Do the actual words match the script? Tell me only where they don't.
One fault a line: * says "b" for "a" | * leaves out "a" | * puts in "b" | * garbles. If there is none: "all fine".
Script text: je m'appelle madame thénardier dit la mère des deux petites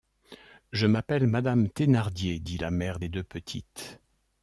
all fine